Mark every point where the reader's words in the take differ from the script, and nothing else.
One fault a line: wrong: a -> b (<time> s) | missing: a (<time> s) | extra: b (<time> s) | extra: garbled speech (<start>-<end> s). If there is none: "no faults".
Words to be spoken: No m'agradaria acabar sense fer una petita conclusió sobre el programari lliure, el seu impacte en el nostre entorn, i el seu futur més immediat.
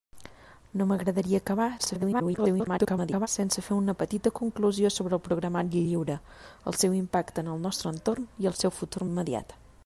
extra: garbled speech (1.8-3.3 s)
missing: més (9.1 s)